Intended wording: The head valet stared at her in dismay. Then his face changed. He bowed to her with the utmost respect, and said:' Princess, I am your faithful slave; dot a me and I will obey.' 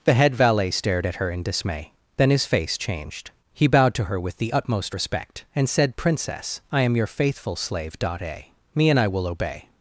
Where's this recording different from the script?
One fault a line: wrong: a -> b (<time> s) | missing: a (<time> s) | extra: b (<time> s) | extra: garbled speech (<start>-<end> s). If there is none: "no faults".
no faults